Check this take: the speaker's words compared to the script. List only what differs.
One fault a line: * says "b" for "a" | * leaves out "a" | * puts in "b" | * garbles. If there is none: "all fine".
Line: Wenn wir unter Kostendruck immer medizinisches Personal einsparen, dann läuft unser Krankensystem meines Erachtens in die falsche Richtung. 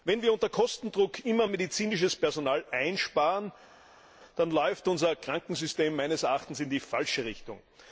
all fine